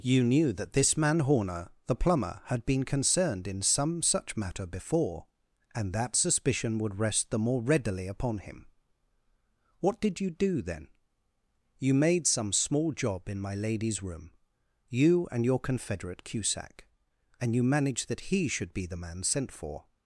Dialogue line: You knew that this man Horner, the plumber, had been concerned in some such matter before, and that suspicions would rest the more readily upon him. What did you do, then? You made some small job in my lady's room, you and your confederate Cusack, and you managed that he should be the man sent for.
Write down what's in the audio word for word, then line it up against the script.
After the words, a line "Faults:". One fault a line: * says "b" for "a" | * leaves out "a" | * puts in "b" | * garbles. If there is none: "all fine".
You knew that this man Horner, the plumber, had been concerned in some such matter before, and that suspicion would rest the more readily upon him. What did you do, then? You made some small job in my lady's room, you and your confederate Cusack, and you managed that he should be the man sent for.
Faults:
* says "suspicion" for "suspicions"